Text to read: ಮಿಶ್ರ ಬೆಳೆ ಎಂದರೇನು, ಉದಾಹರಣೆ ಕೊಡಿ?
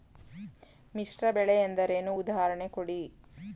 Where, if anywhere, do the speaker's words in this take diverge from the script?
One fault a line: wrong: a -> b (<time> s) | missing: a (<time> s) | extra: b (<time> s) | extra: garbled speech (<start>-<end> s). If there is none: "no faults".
no faults